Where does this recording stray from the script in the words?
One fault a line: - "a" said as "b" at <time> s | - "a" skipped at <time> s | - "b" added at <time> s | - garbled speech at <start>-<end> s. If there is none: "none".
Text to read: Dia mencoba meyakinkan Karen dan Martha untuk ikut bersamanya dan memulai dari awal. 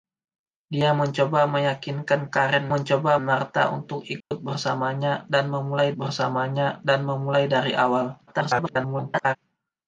- "dan" said as "mencoba" at 2.7 s
- "bersamanya dan memulai" added at 5.9 s
- garbled speech at 8.3-9.4 s